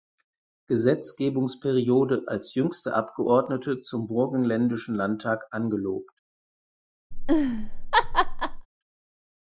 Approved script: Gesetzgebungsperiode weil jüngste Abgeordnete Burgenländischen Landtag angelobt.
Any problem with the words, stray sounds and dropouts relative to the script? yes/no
yes